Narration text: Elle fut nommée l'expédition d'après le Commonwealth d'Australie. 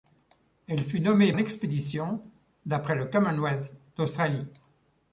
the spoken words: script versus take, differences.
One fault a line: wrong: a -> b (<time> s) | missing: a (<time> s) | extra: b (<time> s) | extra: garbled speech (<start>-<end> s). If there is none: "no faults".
no faults